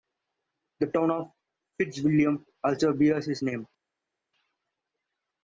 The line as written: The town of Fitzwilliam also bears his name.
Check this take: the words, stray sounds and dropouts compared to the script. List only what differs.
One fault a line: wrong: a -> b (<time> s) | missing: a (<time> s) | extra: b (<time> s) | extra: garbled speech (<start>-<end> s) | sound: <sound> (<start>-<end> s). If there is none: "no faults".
no faults